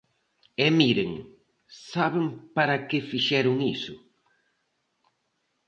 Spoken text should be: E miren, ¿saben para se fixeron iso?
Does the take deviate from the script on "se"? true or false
true